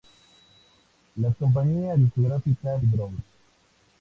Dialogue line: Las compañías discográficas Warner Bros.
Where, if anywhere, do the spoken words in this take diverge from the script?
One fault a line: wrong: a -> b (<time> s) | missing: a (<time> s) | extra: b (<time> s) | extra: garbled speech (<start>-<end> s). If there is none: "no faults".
missing: Warner (2.8 s)